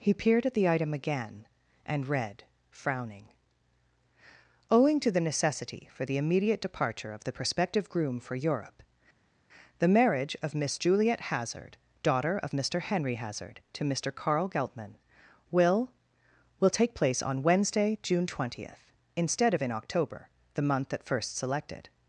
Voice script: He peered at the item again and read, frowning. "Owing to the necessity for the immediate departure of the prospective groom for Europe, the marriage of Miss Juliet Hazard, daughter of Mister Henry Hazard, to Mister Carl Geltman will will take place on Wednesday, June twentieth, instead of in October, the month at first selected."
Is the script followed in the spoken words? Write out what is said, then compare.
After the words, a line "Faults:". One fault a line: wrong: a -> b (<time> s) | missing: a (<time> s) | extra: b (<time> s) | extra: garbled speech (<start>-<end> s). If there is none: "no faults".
He peered at the item again and read, frowning. "Owing to the necessity for the immediate departure of the prospective groom for Europe, the marriage of Miss Juliet Hazard, daughter of Mister Henry Hazard, to Mister Carl Geltman will will take place on Wednesday, June twentieth, instead of in October, the month at first selected."
Faults:
no faults